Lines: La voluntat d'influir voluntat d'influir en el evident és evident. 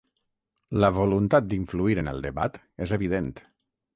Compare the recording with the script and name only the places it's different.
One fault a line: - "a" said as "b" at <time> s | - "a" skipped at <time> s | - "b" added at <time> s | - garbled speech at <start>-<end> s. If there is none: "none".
- "voluntat d'influir" skipped at 2.0 s
- "evident" said as "debat" at 2.3 s